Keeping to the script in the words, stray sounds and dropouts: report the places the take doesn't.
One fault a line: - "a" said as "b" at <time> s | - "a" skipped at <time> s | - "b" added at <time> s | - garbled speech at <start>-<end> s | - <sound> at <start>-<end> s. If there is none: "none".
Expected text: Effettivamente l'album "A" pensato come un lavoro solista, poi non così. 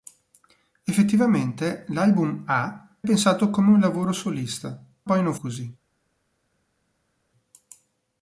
none